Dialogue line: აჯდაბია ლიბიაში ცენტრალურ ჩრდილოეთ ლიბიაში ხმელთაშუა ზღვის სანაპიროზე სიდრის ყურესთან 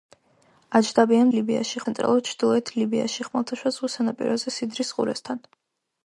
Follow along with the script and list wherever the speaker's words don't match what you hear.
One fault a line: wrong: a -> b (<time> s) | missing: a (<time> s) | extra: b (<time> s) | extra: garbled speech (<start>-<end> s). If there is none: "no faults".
no faults